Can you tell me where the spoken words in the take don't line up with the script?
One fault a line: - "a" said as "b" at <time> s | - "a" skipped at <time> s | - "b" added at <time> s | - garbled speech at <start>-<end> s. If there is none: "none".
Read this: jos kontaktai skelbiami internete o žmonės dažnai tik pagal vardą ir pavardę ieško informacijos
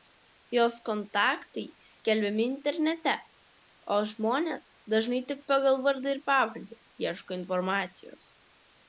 none